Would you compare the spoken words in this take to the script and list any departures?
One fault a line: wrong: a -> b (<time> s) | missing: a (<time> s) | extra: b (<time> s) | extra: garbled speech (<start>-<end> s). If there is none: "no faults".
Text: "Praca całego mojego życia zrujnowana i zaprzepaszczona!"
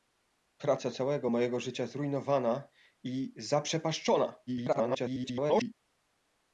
extra: garbled speech (4.5-5.7 s)